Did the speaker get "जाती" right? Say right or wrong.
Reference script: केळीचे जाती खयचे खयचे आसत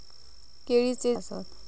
wrong